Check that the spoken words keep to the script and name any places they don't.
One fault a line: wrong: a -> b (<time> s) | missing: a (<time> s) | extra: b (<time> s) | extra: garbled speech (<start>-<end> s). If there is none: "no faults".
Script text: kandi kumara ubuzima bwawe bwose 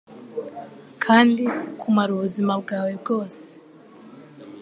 no faults